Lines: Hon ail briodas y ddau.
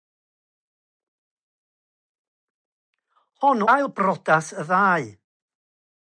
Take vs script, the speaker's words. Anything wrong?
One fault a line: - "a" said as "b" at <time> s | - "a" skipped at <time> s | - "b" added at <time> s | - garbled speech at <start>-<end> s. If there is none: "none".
none